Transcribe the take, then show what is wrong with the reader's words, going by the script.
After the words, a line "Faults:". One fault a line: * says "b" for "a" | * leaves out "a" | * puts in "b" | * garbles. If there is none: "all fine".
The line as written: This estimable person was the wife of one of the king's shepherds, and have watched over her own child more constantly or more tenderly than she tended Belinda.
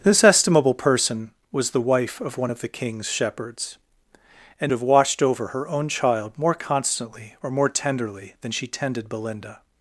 This estimable person was the wife of one of the king's shepherds, and have watched over her own child more constantly or more tenderly than she tended Belinda.
Faults:
all fine